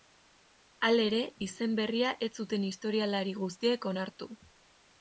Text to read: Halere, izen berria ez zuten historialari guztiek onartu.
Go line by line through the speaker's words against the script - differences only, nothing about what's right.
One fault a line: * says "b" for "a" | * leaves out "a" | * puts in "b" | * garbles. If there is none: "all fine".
all fine